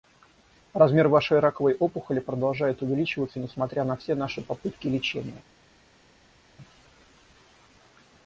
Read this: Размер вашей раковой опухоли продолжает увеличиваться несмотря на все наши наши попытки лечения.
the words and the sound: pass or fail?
fail